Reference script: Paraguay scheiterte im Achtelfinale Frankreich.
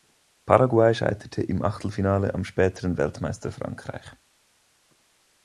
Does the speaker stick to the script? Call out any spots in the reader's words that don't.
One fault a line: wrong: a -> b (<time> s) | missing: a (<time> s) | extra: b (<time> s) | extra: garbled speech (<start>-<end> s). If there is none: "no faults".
extra: am späteren Weltmeister (2.3 s)